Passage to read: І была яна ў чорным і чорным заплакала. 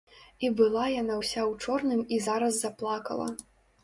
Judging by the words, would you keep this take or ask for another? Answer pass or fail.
fail